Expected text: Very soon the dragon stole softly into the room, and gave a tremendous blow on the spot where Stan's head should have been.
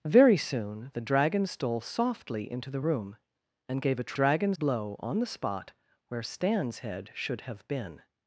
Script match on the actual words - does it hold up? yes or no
no